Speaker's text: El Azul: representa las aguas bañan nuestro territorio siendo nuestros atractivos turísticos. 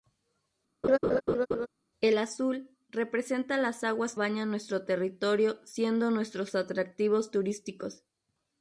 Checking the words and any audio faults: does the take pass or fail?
fail